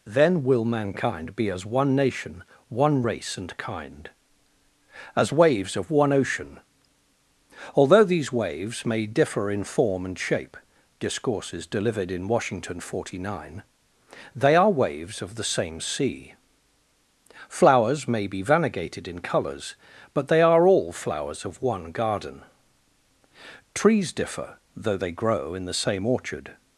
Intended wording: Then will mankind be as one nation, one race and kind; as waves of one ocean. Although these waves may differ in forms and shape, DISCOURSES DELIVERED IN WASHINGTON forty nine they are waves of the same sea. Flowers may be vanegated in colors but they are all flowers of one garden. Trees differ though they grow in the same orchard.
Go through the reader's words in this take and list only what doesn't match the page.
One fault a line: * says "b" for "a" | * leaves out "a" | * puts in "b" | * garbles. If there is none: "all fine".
* says "form" for "forms"